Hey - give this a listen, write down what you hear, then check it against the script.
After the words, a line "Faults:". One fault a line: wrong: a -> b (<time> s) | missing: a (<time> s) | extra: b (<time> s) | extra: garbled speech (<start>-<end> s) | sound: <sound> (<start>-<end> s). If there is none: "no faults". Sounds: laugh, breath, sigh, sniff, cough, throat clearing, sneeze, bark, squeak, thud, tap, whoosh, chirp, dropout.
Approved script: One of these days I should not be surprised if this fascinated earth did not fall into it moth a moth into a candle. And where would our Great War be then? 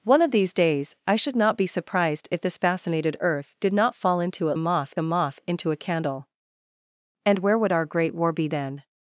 One of these days I should not be surprised if this fascinated earth did not fall into it moth a moth into a candle. And where would our Great War be then?
Faults:
no faults